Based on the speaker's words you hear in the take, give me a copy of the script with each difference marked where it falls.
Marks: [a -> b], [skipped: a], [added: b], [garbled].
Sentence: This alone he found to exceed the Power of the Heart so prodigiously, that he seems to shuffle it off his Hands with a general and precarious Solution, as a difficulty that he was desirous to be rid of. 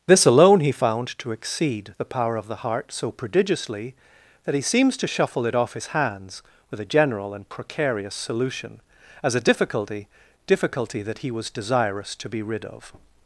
This alone he found to exceed the Power of the Heart so prodigiously, that he seems to shuffle it off his Hands with a general and precarious Solution, as a difficulty [added: difficulty] that he was desirous to be rid of.